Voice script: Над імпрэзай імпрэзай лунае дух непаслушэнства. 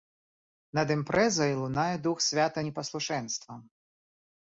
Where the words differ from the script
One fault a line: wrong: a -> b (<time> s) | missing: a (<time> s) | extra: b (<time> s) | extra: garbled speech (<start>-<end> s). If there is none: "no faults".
missing: імпрэзай (1.5 s)
extra: свята (2.3 s)